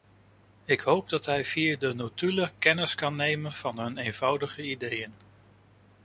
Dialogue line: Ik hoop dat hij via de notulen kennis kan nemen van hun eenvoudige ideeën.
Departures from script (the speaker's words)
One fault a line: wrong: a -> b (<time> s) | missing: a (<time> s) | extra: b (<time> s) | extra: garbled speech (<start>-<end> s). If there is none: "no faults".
no faults